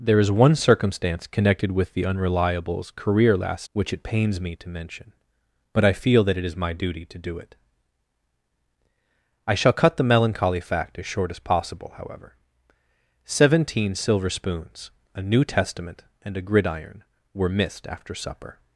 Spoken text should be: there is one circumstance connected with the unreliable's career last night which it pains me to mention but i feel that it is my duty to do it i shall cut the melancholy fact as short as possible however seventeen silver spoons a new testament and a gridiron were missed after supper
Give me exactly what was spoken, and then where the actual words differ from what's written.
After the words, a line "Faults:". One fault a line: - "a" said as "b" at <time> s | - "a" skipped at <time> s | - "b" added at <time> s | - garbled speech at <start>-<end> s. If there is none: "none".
there is one circumstance connected with the unreliable's career last which it pains me to mention but i feel that it is my duty to do it i shall cut the melancholy fact as short as possible however seventeen silver spoons a new testament and a gridiron were missed after supper
Faults:
- "night" skipped at 3.7 s